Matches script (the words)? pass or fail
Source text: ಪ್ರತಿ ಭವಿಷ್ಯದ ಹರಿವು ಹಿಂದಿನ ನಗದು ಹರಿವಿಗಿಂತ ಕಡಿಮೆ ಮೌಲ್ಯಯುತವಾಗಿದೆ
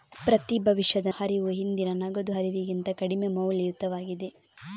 pass